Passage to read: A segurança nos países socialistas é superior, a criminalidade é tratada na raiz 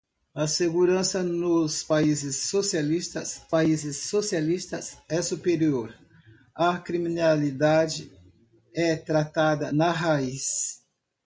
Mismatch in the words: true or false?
true